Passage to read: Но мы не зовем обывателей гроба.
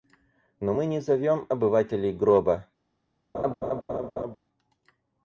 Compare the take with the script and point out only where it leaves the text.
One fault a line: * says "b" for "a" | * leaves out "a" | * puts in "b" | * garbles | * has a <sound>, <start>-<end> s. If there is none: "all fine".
* has a laugh, 3.3-4.4 s